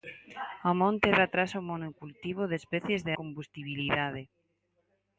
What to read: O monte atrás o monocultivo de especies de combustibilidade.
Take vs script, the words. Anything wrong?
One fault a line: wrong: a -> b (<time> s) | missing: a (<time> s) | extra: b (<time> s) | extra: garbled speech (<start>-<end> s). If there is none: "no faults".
no faults